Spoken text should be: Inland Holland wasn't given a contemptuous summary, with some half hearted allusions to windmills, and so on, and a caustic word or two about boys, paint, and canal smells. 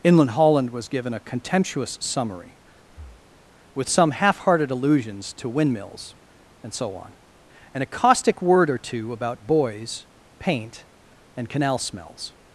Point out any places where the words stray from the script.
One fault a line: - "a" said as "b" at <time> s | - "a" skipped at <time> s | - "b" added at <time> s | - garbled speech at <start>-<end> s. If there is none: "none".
- "wasn't" said as "was" at 0.7 s